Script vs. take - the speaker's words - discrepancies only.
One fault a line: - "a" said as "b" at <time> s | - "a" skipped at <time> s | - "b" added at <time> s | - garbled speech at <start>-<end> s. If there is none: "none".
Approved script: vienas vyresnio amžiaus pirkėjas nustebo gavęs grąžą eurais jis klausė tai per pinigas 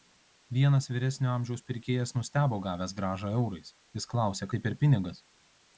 none